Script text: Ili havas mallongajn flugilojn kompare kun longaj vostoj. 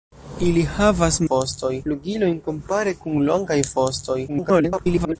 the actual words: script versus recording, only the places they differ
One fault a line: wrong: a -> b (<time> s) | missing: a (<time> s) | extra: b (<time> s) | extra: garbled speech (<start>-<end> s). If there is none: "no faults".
wrong: mallongajn -> vostoj (1.3 s)
extra: garbled speech (4.3-5.2 s)